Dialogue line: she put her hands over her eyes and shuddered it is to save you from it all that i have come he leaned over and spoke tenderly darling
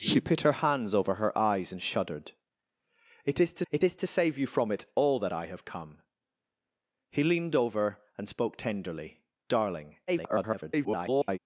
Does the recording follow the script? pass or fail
fail